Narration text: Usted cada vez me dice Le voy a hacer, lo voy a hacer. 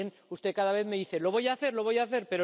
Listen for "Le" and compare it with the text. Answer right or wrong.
wrong